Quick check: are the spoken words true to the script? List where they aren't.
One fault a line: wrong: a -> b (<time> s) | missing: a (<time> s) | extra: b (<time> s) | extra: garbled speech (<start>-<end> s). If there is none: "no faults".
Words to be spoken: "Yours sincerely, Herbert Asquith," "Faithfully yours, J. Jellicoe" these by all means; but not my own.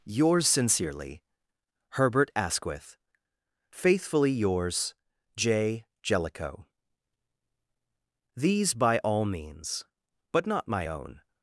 no faults